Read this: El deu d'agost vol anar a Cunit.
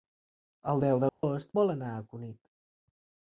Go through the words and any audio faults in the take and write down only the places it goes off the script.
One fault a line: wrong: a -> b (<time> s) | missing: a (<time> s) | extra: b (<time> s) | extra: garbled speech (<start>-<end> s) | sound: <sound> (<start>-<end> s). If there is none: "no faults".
sound: dropout (1.1-1.2 s)